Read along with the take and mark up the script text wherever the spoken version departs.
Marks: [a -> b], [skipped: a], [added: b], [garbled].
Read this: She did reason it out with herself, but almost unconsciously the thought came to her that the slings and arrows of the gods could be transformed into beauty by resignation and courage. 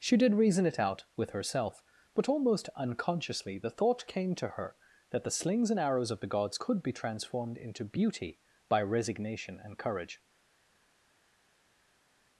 She did reason it out with herself, but almost unconsciously the thought came to her that the slings and arrows of the gods could be transformed into beauty by resignation and courage.